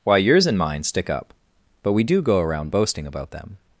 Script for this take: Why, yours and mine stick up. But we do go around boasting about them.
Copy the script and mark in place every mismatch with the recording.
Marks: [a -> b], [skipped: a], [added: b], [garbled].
Why, yours and mine stick up. But we do go around boasting about them.